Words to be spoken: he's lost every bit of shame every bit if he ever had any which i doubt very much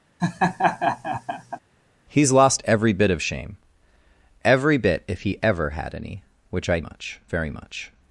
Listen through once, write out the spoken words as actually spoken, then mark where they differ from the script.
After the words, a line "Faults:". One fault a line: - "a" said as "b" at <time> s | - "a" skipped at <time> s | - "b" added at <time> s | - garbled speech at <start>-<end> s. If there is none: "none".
he's lost every bit of shame every bit if he ever had any which i much very much
Faults:
- "doubt" said as "much" at 6.8 s